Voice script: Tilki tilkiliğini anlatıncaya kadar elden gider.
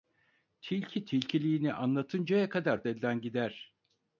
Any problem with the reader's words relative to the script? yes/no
no